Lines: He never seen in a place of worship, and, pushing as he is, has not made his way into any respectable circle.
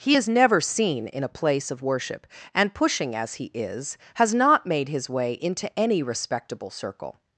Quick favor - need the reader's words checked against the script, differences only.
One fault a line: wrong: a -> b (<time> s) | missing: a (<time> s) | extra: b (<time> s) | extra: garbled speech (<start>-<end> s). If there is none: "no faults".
extra: is (0.1 s)